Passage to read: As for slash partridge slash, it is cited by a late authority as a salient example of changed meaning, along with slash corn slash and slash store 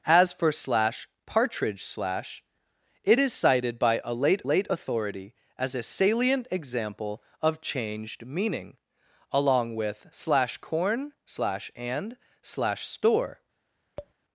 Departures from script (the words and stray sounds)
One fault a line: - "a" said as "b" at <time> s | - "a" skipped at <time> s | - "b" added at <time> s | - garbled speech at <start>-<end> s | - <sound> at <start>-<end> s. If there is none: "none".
- "late" added at 4.4 s
- tap at 14.0-14.1 s